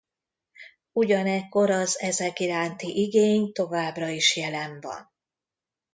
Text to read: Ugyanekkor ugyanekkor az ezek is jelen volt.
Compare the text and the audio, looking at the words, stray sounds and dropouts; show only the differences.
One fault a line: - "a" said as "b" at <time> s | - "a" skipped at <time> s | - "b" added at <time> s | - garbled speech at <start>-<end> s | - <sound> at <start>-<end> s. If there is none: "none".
- "ugyanekkor" skipped at 1.7 s
- "iránti igény továbbra" added at 2.4 s
- "volt" said as "van" at 4.8 s